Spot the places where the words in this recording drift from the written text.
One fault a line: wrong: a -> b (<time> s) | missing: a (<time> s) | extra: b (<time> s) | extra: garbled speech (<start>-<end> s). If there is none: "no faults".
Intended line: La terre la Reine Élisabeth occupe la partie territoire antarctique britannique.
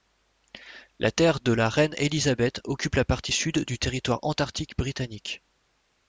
extra: de (1.4 s)
extra: sud du (3.3 s)